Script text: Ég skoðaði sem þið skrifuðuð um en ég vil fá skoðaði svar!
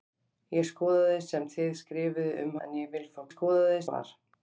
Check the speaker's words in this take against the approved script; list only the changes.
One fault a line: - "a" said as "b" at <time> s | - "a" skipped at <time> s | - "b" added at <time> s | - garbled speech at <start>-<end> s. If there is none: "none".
none